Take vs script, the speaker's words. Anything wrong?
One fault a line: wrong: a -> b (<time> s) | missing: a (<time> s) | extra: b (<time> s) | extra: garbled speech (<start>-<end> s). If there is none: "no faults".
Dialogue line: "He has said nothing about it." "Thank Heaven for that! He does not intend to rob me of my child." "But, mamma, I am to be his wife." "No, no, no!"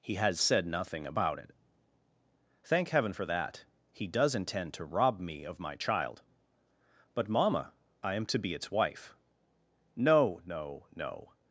missing: not (4.3 s)
wrong: his -> its (8.5 s)